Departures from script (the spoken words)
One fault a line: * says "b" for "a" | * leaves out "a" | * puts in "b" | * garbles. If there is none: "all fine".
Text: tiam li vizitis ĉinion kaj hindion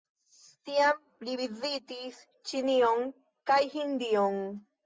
all fine